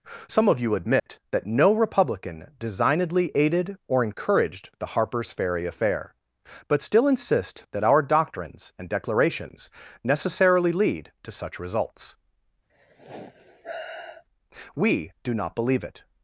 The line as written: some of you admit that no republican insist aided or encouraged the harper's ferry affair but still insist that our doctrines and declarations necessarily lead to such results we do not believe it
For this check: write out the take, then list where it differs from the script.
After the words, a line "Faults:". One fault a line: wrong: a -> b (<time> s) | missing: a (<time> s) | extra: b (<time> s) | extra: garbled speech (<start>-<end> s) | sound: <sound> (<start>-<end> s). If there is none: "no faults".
some of you admit that no republican designedly aided or encouraged the harper's ferry affair but still insist that our doctrines and declarations necessarily lead to such results we do not believe it
Faults:
sound: dropout (1.0-1.1 s)
wrong: insist -> designedly (2.6 s)
sound: sigh (12.7-14.2 s)